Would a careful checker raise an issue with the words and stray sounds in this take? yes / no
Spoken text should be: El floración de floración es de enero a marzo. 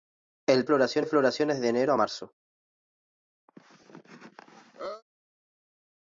yes